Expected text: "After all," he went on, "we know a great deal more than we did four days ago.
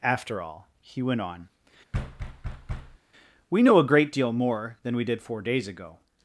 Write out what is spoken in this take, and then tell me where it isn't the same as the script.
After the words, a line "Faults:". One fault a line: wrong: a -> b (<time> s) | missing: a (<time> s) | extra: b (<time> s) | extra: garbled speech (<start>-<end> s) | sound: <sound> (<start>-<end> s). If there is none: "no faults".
"After all," he went on, "we know a great deal more than we did four days ago.
Faults:
sound: thud (1.9-3.0 s)